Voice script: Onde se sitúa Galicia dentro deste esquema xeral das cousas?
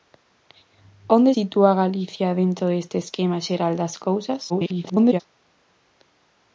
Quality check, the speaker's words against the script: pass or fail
fail